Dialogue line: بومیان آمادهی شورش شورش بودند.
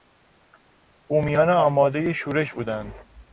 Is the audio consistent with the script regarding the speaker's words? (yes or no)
no